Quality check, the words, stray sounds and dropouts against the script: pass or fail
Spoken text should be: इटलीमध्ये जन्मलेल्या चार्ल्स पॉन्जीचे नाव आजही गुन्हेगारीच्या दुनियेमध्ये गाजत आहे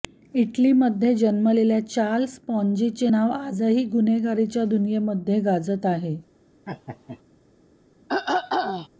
fail